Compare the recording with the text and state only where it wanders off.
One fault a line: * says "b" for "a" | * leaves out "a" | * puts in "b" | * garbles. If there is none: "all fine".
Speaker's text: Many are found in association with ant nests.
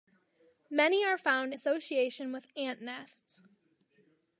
* leaves out "in"